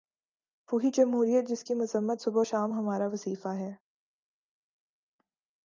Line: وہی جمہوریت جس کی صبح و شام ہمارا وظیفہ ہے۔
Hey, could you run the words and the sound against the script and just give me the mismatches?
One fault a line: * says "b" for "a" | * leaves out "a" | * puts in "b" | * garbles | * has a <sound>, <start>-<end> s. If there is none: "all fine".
* puts in "مذمت"